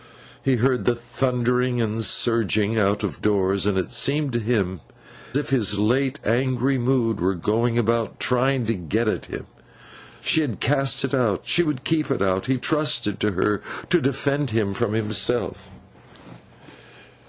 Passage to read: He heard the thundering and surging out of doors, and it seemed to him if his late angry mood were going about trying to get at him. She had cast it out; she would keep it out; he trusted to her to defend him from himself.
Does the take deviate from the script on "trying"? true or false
false